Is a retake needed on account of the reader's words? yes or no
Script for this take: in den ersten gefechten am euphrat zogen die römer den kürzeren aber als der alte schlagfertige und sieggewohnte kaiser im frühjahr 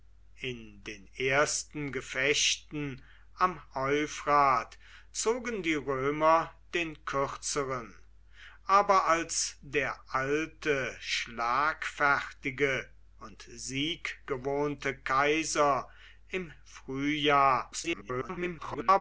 yes